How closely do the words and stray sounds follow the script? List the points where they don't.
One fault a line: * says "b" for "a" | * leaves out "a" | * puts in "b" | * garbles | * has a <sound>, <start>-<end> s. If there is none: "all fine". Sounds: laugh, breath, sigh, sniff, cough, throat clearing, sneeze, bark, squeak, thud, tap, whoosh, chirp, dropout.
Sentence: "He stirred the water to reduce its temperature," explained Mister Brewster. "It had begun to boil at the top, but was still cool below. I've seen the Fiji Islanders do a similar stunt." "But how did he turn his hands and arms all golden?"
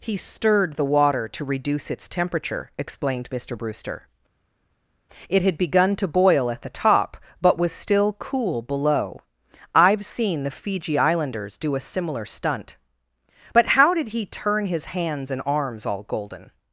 all fine